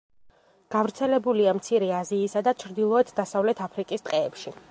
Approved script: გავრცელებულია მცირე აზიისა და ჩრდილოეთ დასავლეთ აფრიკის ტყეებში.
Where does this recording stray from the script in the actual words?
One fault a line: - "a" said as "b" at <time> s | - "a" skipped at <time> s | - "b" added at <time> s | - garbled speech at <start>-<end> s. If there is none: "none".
none